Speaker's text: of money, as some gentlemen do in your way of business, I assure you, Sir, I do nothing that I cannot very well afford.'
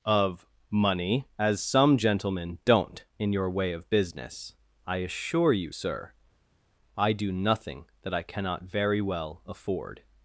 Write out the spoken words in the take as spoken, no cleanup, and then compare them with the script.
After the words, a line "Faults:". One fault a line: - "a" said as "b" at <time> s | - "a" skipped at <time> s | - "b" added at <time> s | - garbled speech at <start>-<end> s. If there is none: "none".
of money, as some gentlemen don't in your way of business, I assure you, Sir, I do nothing that I cannot very well afford.'
Faults:
- "do" said as "don't" at 2.6 s